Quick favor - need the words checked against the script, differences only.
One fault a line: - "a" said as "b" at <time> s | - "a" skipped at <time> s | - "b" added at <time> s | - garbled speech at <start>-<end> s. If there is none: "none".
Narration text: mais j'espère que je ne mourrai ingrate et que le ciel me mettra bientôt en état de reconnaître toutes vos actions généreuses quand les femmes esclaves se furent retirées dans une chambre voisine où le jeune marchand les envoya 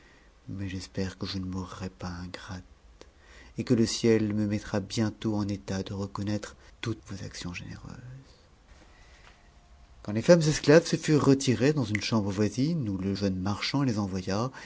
- "pas" added at 1.9 s